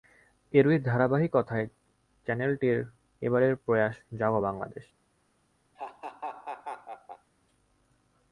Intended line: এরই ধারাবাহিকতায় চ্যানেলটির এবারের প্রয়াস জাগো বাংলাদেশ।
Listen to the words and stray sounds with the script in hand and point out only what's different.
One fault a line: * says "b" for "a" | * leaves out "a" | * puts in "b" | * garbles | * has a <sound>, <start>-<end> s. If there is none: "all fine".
* has a laugh, 5.8-7.3 s